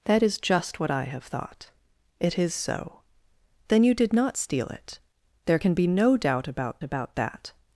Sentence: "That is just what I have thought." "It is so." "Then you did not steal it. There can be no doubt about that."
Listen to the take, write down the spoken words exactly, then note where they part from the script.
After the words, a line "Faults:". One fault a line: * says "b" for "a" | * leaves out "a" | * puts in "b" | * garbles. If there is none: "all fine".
"That is just what I have thought." "It is so." "Then you did not steal it. There can be no doubt about about that."
Faults:
* puts in "about"